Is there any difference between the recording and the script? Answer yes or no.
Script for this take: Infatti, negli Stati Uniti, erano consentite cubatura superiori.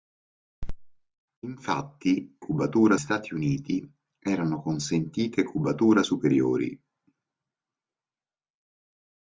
yes